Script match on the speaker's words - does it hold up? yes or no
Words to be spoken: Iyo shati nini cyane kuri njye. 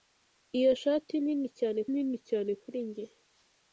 no